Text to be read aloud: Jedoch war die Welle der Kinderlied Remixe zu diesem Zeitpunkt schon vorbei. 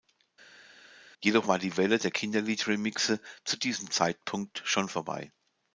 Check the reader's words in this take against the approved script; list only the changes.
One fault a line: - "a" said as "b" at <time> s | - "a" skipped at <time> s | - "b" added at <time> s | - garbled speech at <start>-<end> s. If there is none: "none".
none